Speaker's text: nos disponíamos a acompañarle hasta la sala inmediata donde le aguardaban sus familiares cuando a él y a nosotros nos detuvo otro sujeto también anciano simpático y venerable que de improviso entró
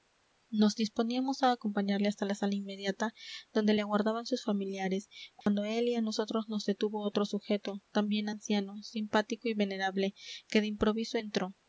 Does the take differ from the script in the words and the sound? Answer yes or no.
yes